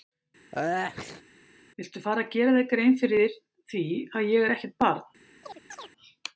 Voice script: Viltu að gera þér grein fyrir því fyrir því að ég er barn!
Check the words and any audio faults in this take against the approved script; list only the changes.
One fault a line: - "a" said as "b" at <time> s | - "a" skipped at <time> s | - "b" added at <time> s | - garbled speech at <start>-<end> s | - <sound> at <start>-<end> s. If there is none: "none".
- sneeze at 0.5-1.2 s
- "fara" added at 2.1 s
- "fyrir því" skipped at 3.8 s
- "ekkert" added at 4.6 s
- chirp at 5.4-5.9 s